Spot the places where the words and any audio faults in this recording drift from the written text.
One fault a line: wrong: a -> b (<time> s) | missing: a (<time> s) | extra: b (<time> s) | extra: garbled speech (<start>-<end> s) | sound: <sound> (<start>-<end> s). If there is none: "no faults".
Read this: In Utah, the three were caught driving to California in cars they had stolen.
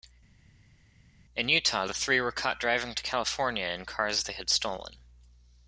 no faults